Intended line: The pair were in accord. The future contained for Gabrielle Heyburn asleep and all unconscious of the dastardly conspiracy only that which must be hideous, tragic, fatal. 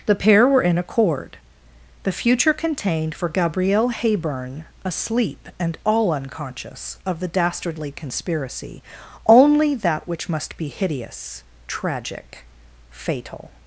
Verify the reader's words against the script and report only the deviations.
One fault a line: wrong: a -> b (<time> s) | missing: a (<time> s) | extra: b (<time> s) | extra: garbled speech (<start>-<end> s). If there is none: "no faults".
no faults